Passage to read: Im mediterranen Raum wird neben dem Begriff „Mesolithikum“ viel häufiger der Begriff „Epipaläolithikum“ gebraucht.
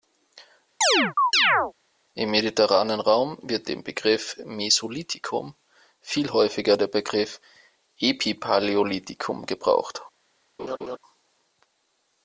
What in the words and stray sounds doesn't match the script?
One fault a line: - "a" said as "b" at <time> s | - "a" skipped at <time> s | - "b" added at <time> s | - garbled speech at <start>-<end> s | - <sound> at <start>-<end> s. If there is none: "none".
- chirp at 0.8-1.7 s
- "neben" skipped at 3.7 s
- laugh at 10.6-11.0 s